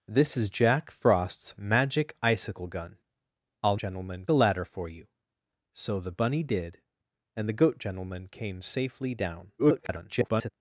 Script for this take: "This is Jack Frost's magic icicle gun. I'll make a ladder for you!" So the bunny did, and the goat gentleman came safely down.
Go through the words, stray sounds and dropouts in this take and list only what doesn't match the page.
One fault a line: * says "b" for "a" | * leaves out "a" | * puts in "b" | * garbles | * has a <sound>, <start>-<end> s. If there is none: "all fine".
* says "gentleman" for "make"
* garbles